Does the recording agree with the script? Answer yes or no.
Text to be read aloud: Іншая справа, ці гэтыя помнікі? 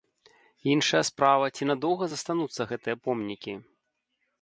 no